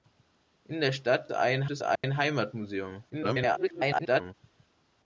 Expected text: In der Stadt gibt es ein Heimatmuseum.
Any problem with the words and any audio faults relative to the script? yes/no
yes